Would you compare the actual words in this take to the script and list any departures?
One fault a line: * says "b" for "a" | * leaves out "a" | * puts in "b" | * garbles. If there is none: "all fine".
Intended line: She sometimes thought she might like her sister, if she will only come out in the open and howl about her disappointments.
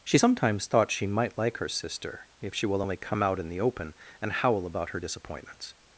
all fine